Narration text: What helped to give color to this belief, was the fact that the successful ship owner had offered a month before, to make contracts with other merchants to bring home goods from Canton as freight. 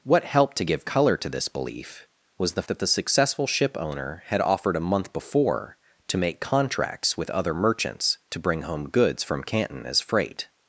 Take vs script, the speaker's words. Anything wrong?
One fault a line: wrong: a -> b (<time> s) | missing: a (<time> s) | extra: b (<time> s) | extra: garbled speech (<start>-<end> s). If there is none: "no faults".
missing: fact (2.6 s)